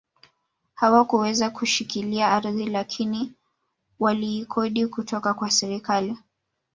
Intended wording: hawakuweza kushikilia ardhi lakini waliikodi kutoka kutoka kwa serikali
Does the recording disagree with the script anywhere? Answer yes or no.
yes